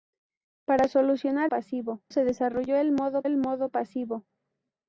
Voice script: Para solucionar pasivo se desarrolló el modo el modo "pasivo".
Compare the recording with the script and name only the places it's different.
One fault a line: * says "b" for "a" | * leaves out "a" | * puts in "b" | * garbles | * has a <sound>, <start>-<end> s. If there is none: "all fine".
all fine